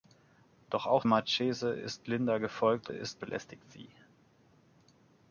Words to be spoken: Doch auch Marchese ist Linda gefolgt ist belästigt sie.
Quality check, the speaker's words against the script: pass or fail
pass